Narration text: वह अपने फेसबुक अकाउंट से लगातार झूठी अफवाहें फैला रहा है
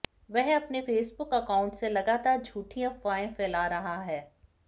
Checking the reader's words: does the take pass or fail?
pass